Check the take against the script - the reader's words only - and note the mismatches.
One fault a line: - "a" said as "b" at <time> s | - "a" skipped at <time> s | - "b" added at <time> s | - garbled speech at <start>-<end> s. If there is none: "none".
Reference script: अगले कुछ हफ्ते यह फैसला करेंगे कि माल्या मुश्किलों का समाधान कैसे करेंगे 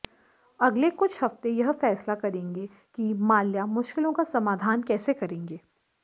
none